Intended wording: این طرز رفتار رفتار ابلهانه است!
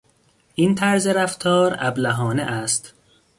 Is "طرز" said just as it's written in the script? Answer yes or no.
yes